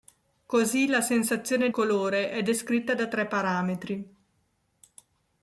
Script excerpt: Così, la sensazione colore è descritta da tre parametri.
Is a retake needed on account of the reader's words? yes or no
no